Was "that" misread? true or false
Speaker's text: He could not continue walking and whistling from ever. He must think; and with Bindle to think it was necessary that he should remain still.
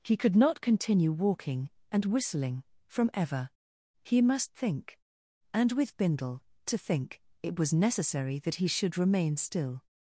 false